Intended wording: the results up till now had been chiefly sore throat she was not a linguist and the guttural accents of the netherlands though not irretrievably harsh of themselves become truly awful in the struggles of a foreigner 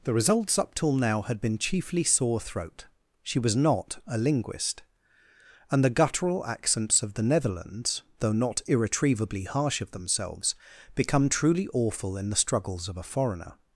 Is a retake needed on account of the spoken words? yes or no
no